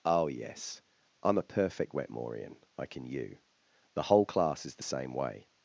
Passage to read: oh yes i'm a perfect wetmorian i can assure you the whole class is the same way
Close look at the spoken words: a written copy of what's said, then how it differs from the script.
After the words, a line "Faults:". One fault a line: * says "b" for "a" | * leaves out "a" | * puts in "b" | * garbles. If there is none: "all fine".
oh yes i'm a perfect wetmorian i can you the whole class is the same way
Faults:
* leaves out "assure"